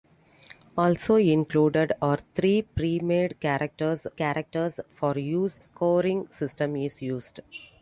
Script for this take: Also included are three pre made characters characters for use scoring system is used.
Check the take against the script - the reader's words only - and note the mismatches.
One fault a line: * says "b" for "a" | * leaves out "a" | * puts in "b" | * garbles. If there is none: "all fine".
all fine